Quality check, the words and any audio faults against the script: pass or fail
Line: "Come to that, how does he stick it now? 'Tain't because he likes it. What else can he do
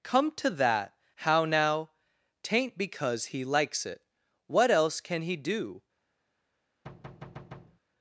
fail